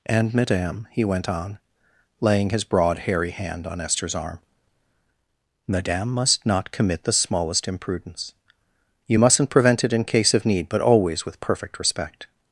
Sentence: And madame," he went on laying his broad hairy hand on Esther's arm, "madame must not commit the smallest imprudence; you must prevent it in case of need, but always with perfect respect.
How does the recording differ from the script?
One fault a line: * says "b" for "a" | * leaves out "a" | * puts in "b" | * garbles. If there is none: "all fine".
* says "mustn't" for "must"